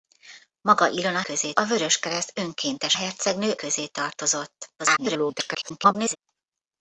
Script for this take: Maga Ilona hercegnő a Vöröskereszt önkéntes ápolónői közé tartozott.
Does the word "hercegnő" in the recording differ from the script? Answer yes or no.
yes